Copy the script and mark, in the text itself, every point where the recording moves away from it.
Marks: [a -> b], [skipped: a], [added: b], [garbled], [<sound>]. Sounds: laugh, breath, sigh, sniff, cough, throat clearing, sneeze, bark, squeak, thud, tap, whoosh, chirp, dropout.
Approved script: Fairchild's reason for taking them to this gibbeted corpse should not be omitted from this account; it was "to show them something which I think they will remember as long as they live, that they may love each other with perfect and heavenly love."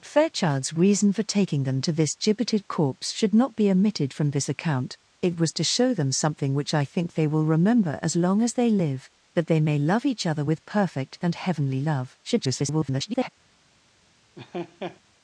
Fairchild's reason for taking them to this gibbeted corpse should not be omitted from this account; it was "to show them something which I think they will remember as long as they live, that they may love each other with perfect and heavenly love." [garbled] [laugh]